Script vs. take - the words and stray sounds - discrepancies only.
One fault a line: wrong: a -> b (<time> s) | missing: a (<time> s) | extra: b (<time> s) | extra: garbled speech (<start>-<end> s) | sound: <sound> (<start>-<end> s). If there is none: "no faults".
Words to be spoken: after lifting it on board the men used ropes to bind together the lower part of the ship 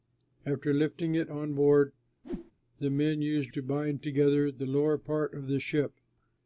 sound: whoosh (2.2-2.5 s)
missing: ropes (3.5 s)